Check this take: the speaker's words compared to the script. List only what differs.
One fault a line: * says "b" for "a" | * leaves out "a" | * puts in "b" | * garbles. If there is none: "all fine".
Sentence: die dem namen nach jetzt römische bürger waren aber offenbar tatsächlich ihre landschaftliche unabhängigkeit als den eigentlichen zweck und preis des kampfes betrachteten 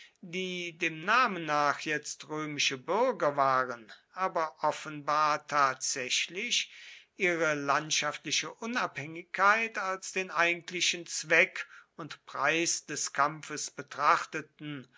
all fine